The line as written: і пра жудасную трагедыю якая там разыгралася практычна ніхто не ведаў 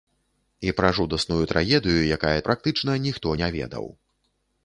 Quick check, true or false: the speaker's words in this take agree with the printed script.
false